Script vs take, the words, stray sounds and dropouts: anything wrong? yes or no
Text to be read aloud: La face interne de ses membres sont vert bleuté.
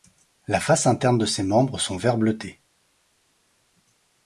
no